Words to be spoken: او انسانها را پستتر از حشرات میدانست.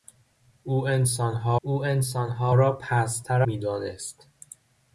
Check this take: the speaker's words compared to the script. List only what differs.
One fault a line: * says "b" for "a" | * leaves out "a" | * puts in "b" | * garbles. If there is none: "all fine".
* puts in "او انسانها"
* leaves out "از حشرات"